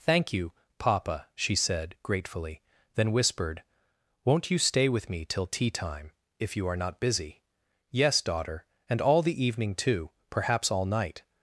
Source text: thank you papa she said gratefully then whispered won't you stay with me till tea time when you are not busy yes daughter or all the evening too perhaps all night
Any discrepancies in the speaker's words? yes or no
yes